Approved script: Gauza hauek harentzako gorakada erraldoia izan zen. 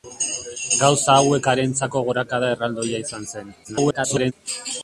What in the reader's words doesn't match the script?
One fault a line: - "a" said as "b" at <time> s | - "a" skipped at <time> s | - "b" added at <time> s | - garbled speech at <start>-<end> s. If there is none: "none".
- garbled speech at 3.6-4.3 s